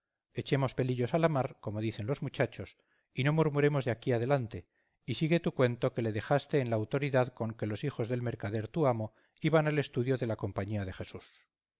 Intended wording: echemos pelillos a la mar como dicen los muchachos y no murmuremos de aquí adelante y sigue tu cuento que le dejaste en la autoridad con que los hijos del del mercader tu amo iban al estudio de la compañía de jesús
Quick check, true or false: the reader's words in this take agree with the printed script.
false